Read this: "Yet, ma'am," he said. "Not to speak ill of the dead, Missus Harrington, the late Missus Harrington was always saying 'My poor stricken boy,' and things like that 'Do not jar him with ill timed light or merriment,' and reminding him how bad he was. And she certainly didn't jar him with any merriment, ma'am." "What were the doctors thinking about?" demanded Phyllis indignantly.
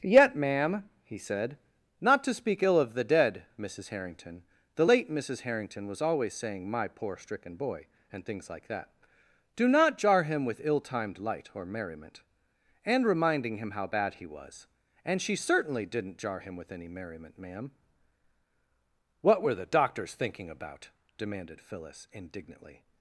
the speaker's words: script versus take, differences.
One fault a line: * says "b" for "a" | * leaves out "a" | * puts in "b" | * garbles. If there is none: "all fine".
all fine